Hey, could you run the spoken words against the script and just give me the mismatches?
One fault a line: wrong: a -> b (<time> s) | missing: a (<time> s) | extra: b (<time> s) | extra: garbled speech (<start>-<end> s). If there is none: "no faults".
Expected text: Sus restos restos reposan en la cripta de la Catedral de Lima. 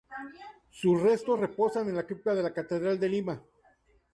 missing: restos (1.4 s)